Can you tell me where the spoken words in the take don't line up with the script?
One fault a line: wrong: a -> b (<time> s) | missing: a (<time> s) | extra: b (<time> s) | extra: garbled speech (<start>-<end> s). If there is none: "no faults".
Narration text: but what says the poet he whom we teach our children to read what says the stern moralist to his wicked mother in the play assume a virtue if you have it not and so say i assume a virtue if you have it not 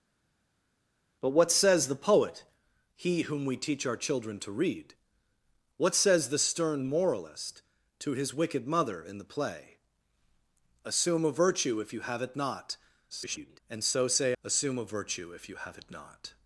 extra: garbled speech (13.1-13.6 s)
missing: i (14.4 s)